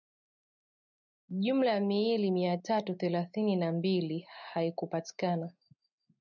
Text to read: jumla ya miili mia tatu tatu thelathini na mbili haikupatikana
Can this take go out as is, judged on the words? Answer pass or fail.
fail